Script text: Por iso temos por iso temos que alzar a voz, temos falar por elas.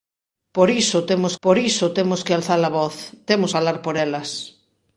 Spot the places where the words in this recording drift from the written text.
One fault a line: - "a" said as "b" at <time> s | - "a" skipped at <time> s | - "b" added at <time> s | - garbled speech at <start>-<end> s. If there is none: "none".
none